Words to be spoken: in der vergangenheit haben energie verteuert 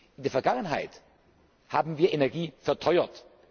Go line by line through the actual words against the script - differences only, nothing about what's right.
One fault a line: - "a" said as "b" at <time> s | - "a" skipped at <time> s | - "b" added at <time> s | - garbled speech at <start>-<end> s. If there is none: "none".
- "wir" added at 2.0 s